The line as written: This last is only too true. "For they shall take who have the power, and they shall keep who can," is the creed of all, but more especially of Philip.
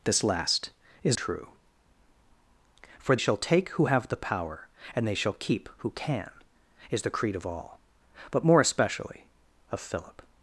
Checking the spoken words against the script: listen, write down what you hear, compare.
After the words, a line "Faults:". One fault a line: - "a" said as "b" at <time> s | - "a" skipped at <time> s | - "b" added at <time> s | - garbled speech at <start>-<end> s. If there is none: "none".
This last is true. "For shall take who have the power, and they shall keep who can," is the creed of all, but more especially of Philip.
Faults:
- "only too" skipped at 1.2 s
- "they" skipped at 3.2 s